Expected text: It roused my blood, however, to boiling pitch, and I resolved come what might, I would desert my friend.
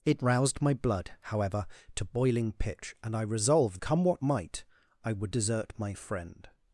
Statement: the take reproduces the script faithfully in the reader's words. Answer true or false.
true